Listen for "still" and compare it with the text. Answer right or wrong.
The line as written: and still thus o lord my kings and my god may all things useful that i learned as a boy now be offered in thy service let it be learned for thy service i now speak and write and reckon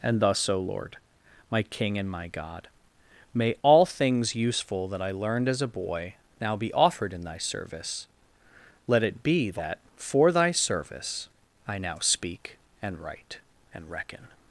wrong